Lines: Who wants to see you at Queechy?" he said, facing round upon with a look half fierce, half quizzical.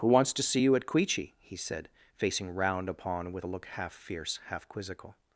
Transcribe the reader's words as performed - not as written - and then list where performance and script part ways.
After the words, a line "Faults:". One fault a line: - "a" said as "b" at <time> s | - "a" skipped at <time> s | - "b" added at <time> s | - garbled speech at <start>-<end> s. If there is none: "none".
Who wants to see you at Queechy?" he said, facing round upon with a look half fierce, half quizzical.
Faults:
none